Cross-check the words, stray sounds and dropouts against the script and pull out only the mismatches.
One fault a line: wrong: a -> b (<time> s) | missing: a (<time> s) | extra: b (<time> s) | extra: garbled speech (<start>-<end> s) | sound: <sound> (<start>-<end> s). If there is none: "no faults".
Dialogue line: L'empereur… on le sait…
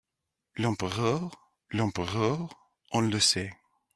extra: l'empereur (1.7 s)